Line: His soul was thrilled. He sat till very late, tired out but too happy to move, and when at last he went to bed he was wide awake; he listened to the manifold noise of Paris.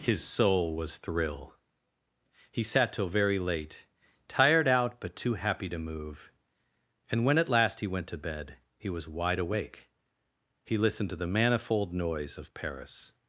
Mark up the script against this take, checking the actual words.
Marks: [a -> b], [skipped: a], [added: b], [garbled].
His soul was [thrilled. -> thrill] He sat till very late, tired out but too happy to move, and when at last he went to bed he was wide awake; he listened to the manifold noise of Paris.